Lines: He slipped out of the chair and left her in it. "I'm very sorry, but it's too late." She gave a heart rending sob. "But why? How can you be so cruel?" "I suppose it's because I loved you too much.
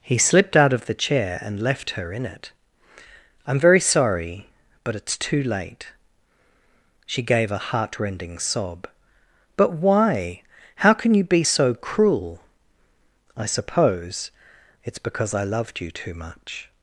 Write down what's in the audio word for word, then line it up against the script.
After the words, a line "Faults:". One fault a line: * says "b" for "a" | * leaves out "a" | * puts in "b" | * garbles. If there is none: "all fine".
He slipped out of the chair and left her in it. "I'm very sorry, but it's too late." She gave a heart rending sob. "But why? How can you be so cruel?" "I suppose it's because I loved you too much.
Faults:
all fine